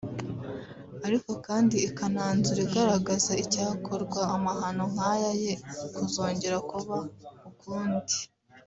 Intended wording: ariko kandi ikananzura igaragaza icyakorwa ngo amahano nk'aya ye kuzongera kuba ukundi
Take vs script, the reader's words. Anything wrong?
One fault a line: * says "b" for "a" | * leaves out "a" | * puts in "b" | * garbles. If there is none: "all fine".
* leaves out "ngo"